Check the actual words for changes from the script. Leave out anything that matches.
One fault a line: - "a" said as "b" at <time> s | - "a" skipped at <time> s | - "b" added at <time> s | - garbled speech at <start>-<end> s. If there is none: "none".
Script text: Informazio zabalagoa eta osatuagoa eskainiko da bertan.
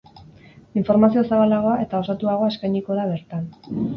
none